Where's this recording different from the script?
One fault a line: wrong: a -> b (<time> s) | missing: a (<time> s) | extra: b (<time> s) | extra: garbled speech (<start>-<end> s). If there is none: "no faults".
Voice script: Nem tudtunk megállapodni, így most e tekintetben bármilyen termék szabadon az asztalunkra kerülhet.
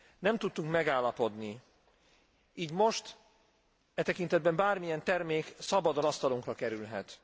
missing: az (6.0 s)